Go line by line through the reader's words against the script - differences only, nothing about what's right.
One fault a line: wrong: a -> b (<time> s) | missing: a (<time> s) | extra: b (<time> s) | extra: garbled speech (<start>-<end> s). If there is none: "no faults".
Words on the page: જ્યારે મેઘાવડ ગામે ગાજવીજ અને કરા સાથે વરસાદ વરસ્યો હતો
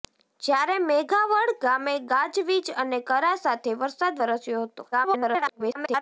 extra: garbled speech (4.9-6.0 s)